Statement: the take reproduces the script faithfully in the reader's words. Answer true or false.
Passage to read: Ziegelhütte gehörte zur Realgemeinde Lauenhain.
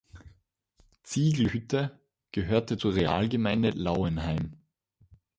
true